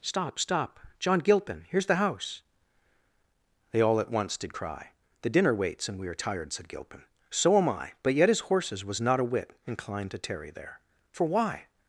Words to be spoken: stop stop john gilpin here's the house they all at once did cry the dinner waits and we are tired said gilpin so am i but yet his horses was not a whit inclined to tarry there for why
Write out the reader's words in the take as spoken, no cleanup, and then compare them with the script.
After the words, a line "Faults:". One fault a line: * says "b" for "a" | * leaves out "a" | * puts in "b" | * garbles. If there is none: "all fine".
stop stop john gilpin here's the house they all at once did cry the dinner waits and we are tired said gilpin so am i but yet his horses was not a whit inclined to tarry there for why
Faults:
all fine